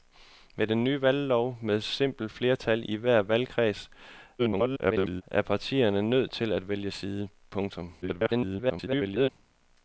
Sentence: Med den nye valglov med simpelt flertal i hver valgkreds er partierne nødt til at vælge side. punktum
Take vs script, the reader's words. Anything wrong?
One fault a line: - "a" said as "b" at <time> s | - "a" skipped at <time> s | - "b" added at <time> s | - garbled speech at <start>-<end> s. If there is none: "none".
- garbled speech at 4.4-5.2 s
- garbled speech at 8.0-9.3 s